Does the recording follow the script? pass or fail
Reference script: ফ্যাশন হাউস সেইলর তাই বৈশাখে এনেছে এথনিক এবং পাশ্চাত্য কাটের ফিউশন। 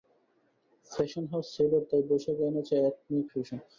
fail